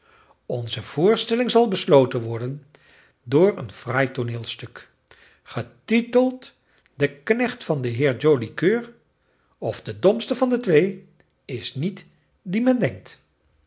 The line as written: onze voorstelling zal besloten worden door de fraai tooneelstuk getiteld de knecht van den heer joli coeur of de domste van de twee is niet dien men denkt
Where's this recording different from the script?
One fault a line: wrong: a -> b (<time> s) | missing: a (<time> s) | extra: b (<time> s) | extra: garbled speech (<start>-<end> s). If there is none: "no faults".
wrong: de -> een (3.6 s)